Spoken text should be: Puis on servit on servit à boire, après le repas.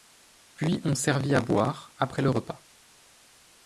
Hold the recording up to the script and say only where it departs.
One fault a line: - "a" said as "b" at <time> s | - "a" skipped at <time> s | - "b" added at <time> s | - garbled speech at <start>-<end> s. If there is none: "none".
- "on servit" skipped at 1.4 s